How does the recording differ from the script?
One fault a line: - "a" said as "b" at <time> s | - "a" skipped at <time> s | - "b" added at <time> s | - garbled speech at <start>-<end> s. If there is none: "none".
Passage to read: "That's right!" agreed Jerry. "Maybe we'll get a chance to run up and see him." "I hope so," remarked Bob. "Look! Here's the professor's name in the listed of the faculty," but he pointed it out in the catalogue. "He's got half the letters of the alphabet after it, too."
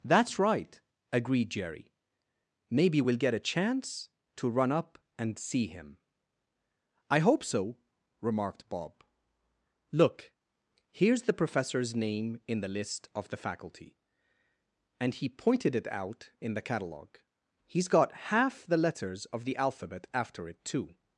- "listed" said as "list" at 12.7 s
- "but" said as "and" at 15.0 s